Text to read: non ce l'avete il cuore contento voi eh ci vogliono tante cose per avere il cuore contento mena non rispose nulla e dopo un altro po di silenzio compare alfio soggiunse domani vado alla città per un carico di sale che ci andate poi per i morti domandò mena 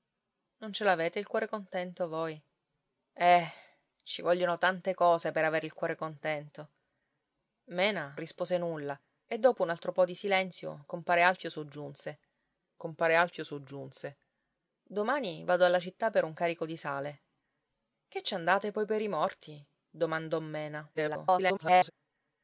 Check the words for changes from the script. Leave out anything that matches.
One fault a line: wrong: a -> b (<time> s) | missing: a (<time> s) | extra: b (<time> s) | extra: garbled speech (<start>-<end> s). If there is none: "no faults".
missing: non (8.2 s)
extra: compare alfio soggiunse (12.8 s)
extra: garbled speech (20.9-21.9 s)